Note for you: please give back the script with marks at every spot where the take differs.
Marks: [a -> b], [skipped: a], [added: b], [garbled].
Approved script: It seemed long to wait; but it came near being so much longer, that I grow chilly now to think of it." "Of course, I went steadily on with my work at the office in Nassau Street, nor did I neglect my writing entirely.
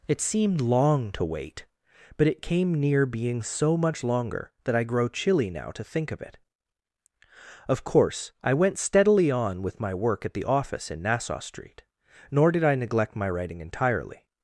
It seemed long to wait; but it came near being so much longer, that I grow chilly now to think of it." "Of course, I went steadily on with my work at the office in Nassau Street, nor did I neglect my writing entirely.